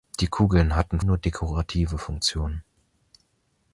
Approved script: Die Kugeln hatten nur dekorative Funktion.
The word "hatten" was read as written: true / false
true